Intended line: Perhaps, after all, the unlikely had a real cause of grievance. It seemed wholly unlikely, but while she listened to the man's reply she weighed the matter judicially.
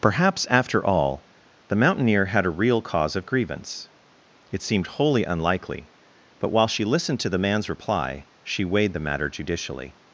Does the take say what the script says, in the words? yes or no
no